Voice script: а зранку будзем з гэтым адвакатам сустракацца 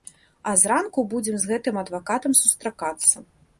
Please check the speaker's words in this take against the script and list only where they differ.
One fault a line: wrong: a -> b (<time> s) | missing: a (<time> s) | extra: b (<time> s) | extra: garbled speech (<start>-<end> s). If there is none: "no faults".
no faults